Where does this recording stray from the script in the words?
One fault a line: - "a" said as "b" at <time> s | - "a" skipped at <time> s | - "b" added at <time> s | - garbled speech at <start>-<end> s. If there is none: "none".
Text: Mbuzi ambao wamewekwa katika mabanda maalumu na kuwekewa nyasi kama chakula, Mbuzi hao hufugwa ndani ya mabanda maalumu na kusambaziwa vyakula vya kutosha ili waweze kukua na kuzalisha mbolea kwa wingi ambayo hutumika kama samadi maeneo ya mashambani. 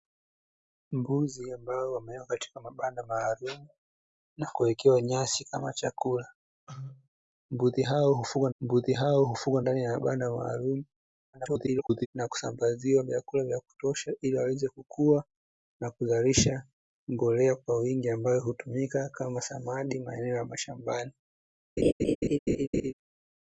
- "Mbuzi hao hufugwa" added at 8.6 s
- garbled speech at 11.3-12.1 s